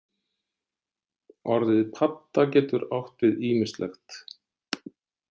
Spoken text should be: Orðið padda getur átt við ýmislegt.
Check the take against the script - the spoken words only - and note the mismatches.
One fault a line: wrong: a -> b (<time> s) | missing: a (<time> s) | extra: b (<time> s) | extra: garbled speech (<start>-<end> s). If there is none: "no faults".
no faults